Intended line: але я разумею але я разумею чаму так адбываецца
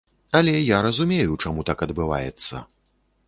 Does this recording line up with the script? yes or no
no